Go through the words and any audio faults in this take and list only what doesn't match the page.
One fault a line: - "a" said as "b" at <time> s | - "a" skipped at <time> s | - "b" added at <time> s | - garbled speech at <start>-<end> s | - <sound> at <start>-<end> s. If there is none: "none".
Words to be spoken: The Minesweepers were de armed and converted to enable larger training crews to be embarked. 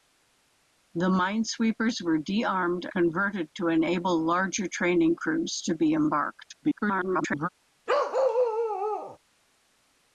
- "and" skipped at 2.9 s
- garbled speech at 6.6-7.5 s
- bark at 7.9-9.2 s